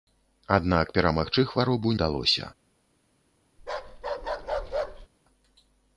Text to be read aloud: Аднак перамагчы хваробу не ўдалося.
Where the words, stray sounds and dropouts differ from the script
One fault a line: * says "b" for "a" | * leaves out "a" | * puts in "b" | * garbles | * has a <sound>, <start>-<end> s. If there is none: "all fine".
* leaves out "не"
* has a bark, 3.6-5.1 s